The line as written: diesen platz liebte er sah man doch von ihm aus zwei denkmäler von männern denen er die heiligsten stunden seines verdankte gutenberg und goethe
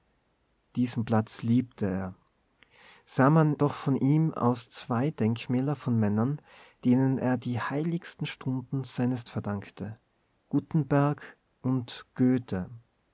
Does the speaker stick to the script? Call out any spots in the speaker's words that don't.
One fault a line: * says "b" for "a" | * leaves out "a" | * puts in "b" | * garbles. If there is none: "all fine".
all fine